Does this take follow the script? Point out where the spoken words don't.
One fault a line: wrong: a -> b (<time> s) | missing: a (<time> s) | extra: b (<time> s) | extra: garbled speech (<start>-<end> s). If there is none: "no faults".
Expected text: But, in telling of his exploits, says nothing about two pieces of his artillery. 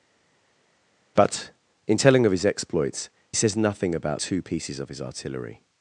no faults